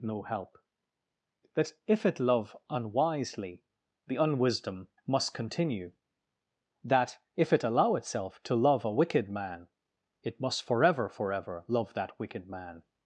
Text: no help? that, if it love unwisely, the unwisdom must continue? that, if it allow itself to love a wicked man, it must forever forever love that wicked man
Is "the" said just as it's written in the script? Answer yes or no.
yes